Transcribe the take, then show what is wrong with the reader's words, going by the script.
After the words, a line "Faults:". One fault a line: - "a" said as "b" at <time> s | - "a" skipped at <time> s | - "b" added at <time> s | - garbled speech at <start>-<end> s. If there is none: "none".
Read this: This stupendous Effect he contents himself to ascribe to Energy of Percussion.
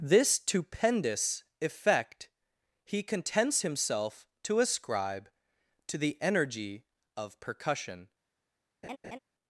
This stupendous Effect he contents himself to ascribe to the Energy of Percussion.
Faults:
- "the" added at 6.0 s